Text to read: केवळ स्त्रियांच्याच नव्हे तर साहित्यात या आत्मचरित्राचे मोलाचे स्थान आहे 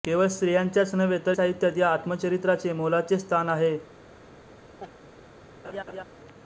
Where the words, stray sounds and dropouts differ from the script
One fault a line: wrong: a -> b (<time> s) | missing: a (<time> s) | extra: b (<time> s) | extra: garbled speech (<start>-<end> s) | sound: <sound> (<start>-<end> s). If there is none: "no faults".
sound: laugh (4.8-4.9 s)
sound: laugh (5.6-6.0 s)